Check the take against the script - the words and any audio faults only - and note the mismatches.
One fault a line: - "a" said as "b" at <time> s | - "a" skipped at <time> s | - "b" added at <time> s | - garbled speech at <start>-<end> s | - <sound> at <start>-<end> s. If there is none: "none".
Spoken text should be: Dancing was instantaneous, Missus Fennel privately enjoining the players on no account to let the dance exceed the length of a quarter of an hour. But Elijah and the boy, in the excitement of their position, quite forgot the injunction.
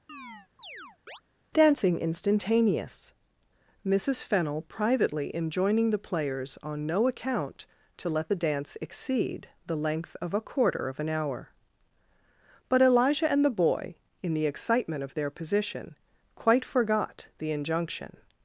- chirp at 0.1-1.2 s
- "was" skipped at 2.0 s